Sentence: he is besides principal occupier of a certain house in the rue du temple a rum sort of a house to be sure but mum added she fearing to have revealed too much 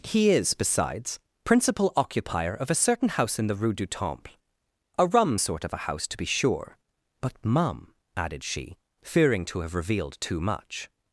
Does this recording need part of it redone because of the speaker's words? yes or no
no